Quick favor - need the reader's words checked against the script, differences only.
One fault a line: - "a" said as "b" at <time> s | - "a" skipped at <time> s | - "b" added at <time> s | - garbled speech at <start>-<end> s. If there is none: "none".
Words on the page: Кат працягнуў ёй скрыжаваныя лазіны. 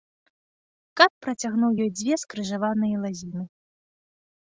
- "дзве" added at 2.0 s